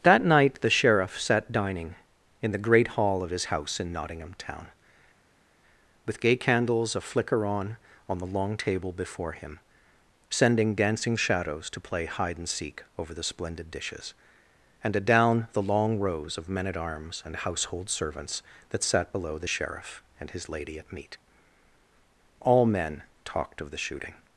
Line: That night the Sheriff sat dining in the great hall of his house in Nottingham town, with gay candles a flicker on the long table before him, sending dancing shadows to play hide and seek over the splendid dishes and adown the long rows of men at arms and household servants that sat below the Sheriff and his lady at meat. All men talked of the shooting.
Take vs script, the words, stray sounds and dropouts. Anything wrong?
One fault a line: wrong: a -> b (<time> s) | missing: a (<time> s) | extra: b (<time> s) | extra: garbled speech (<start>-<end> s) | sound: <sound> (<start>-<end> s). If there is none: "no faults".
extra: on (8.1 s)